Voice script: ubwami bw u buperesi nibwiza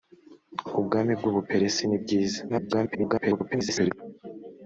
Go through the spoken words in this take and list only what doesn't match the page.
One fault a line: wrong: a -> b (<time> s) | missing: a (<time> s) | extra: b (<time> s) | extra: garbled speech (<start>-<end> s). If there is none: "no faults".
extra: garbled speech (2.5-3.9 s)